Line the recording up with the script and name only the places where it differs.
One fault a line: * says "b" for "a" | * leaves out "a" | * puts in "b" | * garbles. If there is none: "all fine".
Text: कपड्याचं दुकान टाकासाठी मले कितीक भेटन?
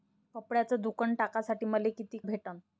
all fine